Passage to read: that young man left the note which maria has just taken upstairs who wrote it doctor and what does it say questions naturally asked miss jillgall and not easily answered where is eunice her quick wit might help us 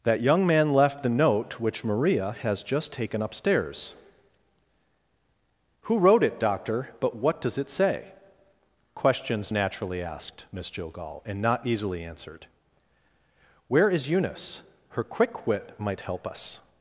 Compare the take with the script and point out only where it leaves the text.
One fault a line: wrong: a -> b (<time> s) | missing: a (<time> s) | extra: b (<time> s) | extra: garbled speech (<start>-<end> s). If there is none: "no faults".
wrong: and -> but (7.0 s)